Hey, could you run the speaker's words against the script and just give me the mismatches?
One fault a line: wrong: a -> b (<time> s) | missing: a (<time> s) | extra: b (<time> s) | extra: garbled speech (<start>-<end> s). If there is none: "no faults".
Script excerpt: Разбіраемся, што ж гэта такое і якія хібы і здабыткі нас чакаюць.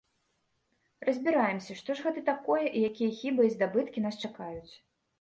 no faults